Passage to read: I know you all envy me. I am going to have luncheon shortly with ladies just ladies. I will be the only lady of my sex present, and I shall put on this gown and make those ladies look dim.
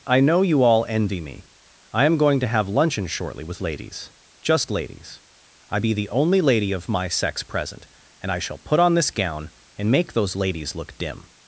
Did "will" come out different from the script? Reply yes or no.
yes